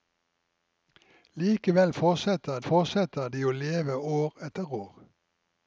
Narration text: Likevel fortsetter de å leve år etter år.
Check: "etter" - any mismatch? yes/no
no